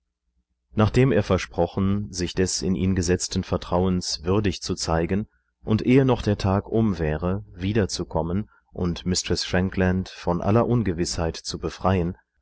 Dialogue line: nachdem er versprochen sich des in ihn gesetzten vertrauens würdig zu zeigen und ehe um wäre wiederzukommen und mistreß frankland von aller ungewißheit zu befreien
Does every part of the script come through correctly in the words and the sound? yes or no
no